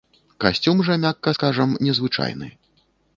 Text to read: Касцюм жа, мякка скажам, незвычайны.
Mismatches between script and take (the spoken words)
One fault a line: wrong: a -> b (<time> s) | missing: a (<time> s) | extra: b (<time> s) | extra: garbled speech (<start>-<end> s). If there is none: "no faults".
no faults